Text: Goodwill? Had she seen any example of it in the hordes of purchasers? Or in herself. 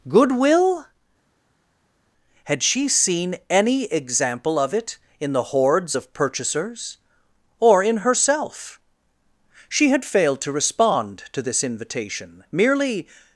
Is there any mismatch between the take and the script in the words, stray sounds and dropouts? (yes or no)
yes